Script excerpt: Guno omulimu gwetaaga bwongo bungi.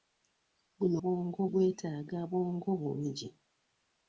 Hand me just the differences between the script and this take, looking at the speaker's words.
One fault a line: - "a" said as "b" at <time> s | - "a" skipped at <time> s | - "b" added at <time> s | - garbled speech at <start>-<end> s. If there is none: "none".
- "omulimu" said as "bwongo" at 1.0 s